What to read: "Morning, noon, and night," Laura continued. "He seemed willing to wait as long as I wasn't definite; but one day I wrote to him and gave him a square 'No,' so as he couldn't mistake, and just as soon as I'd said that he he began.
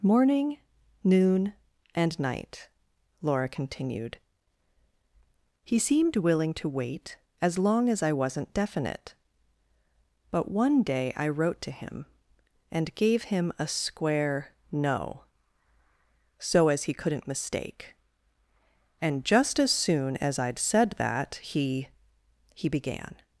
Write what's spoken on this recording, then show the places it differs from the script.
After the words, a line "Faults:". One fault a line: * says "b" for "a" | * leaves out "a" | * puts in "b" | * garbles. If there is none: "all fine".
"Morning, noon, and night," Laura continued. "He seemed willing to wait as long as I wasn't definite; but one day I wrote to him and gave him a square 'No,' so as he couldn't mistake, and just as soon as I'd said that he he began.
Faults:
all fine